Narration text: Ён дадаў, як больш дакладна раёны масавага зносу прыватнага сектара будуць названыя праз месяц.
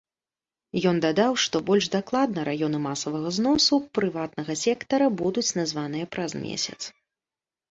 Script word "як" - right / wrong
wrong